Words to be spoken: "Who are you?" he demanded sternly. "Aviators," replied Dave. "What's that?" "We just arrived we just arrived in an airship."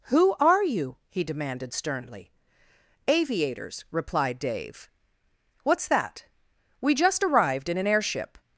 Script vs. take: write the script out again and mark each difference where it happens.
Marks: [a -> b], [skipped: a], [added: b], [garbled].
"Who are you?" he demanded sternly. "Aviators," replied Dave. "What's that?" "We just arrived [skipped: we just arrived] in an airship."